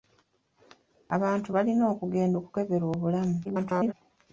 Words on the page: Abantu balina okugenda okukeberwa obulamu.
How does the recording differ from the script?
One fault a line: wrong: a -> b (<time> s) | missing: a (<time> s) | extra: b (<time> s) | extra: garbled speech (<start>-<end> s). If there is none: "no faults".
extra: garbled speech (3.4-3.9 s)